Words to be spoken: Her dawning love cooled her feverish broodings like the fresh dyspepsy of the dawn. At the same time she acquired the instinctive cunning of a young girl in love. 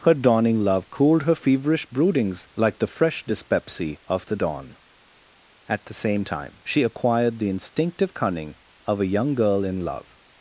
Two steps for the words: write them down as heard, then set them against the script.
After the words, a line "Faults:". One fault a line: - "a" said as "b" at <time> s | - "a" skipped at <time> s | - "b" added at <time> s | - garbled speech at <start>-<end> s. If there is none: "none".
Her dawning love cooled her feverish broodings like the fresh dyspepsy of the dawn. At the same time she acquired the instinctive cunning of a young girl in love.
Faults:
none